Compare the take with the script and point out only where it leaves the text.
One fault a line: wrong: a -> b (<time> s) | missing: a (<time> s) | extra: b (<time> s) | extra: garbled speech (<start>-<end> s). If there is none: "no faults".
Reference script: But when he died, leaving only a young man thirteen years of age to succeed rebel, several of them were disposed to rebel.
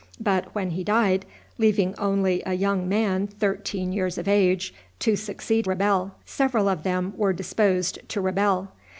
no faults